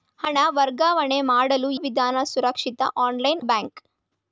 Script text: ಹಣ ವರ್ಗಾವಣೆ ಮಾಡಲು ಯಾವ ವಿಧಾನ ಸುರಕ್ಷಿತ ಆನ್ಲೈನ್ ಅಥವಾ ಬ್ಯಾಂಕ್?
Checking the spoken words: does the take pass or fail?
fail